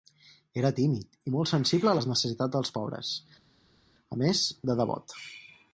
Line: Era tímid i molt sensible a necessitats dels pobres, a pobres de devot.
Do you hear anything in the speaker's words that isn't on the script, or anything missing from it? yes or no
yes